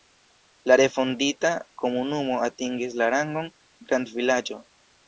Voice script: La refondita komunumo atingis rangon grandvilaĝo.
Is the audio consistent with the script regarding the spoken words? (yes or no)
no